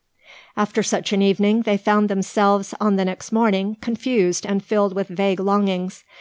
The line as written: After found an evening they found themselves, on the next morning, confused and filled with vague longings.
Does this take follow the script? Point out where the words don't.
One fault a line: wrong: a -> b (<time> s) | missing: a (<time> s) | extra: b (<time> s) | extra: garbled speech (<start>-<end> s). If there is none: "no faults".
wrong: found -> such (0.8 s)